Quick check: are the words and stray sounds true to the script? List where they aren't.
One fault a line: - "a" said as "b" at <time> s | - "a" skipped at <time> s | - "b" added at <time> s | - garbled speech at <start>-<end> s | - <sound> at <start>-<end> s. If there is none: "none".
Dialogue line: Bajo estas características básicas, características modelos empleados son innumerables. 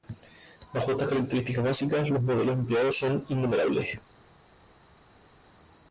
- "características" said as "los" at 2.1 s